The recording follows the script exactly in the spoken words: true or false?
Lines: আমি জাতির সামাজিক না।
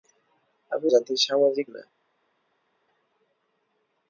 true